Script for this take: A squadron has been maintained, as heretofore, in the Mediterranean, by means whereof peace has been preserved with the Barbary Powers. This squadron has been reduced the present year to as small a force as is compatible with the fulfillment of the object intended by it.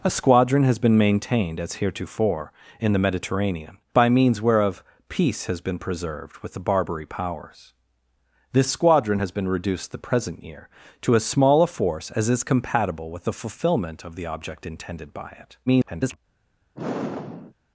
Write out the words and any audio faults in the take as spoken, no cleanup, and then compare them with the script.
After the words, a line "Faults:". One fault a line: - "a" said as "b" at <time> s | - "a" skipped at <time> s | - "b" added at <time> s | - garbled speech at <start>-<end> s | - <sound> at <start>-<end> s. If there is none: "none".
A squadron has been maintained, as heretofore, in the Mediterranean, by means whereof peace has been preserved with the Barbary Powers. This squadron has been reduced the present year to as small a force as is compatible with the fulfillment of the object intended by it. [garbled]
Faults:
- garbled speech at 15.7-16.2 s
- sigh at 16.7-17.5 s